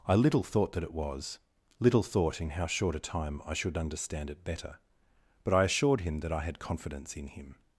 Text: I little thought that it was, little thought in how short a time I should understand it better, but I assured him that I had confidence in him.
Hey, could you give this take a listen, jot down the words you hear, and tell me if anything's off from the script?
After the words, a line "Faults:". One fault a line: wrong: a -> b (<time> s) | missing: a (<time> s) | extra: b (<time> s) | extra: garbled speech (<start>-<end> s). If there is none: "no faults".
I little thought that it was, little thought in how short a time I should understand it better, but I assured him that I had confidence in him.
Faults:
no faults